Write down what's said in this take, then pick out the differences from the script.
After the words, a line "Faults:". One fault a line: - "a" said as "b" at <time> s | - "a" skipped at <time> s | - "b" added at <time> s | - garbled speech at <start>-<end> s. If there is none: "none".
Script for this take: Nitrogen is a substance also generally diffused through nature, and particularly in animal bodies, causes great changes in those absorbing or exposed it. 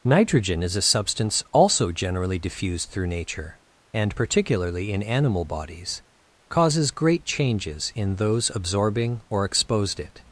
Nitrogen is a substance also generally diffused through nature, and particularly in animal bodies, causes great changes in those absorbing or exposed it.
Faults:
none